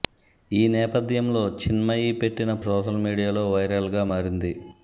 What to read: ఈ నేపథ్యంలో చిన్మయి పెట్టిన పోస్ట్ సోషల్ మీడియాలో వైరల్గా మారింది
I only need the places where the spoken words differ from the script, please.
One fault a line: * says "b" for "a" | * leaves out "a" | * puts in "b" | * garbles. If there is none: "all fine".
* leaves out "పోస్ట్"